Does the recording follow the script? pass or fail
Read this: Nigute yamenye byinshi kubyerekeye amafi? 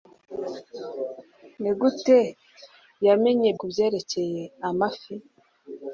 fail